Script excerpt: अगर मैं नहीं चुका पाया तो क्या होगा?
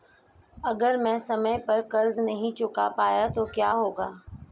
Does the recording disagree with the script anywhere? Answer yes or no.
yes